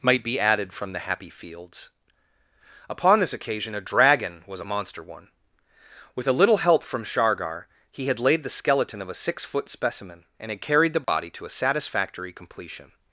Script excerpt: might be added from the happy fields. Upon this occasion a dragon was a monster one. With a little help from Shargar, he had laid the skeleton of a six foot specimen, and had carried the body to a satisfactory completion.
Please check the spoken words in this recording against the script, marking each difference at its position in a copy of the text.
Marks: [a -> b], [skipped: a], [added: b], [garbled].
might be added from the happy fields. Upon this occasion a dragon was a monster one. With a little help from Shargar, he had laid the skeleton of a six foot specimen, and had carried the body to a satisfactory completion.